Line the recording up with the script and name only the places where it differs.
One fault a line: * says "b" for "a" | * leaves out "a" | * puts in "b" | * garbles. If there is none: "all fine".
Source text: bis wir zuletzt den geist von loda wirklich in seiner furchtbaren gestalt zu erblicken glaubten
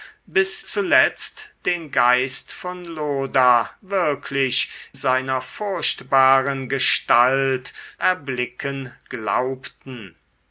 * leaves out "wir"
* leaves out "in"
* leaves out "zu"